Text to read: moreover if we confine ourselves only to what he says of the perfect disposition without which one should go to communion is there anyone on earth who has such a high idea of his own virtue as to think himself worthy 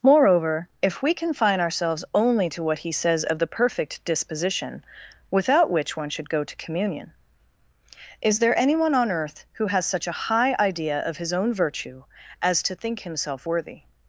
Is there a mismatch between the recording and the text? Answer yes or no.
no